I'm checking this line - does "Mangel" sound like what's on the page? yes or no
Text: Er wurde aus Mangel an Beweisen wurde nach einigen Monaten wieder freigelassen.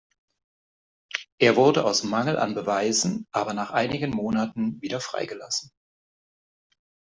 yes